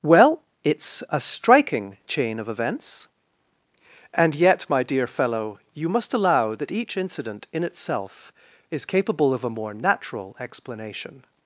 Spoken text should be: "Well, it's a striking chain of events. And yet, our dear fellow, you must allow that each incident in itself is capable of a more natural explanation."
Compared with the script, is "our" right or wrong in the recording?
wrong